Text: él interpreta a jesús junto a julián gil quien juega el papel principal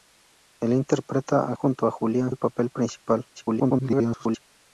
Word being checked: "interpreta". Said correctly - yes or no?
yes